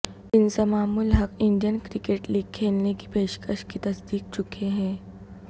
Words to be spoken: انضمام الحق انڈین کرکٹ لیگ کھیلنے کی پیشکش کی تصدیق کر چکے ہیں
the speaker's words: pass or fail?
fail